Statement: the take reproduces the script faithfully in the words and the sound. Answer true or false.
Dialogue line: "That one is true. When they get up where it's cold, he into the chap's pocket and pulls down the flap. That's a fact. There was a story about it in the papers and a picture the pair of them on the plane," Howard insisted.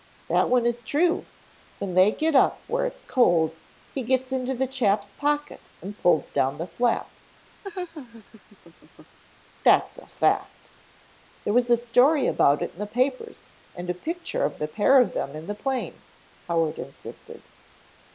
false